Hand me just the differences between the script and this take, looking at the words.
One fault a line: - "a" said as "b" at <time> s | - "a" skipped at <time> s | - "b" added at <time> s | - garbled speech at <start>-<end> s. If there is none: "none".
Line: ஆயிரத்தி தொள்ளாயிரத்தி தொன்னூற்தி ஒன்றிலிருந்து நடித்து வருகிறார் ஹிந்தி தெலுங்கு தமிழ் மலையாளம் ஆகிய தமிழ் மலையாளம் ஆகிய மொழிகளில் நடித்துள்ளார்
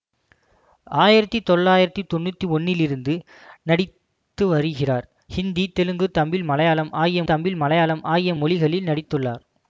none